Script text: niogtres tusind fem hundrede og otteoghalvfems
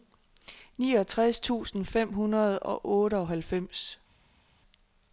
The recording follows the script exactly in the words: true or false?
true